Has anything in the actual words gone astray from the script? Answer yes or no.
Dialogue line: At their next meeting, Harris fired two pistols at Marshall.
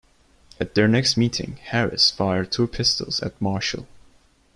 no